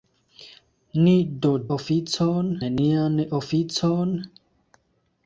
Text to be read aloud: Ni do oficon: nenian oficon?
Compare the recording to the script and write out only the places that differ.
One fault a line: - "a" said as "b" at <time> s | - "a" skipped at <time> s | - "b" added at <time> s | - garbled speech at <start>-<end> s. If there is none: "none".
none